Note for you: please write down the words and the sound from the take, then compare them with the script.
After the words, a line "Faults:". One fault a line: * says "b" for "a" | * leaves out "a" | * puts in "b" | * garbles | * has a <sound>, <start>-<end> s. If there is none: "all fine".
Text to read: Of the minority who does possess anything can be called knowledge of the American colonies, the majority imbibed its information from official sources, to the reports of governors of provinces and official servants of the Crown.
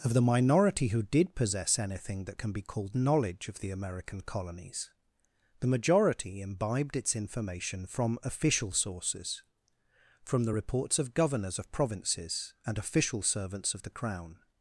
Of the minority who did possess anything that can be called knowledge of the American colonies, the majority imbibed its information from official sources, from the reports of governors of provinces and official servants of the Crown.
Faults:
* says "did" for "does"
* puts in "that"
* says "from" for "to"